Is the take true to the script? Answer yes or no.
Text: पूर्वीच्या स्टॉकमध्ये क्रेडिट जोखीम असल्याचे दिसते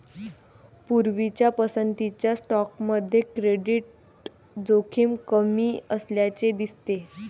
no